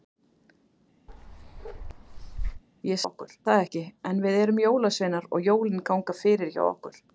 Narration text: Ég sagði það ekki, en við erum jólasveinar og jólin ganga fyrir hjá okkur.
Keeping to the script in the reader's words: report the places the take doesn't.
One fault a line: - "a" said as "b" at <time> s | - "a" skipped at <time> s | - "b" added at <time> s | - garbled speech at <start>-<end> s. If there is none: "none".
- "sagði" said as "okkur" at 3.0 s